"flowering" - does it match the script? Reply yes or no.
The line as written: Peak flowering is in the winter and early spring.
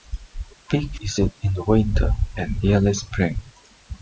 no